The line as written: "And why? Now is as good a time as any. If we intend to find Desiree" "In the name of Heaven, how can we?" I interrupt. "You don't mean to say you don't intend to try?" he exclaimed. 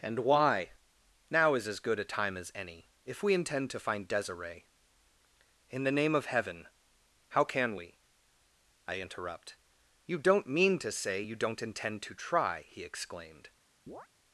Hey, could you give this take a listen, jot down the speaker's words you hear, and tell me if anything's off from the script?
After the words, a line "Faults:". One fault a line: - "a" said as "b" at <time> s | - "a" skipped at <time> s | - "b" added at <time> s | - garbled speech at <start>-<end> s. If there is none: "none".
"And why? Now is as good a time as any. If we intend to find Desiree" "In the name of Heaven, how can we?" I interrupt. "You don't mean to say you don't intend to try?" he exclaimed.
Faults:
none